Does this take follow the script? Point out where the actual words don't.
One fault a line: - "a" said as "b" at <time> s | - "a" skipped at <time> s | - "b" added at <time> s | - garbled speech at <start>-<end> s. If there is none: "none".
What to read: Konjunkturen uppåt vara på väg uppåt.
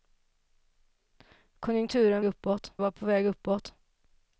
none